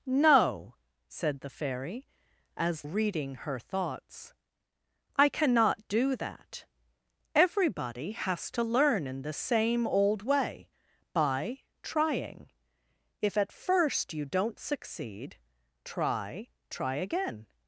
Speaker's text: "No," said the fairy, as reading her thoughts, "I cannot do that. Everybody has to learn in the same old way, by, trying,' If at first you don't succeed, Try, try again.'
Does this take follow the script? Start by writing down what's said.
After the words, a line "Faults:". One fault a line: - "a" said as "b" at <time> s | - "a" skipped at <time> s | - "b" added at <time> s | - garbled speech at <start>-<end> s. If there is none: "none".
"No," said the fairy, as reading her thoughts, "I cannot do that. Everybody has to learn in the same old way, by, trying,' If at first you don't succeed, Try, try again.'
Faults:
none